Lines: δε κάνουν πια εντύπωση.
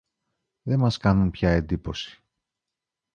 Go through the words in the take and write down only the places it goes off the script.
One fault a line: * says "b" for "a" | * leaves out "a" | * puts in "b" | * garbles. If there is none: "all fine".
* puts in "μας"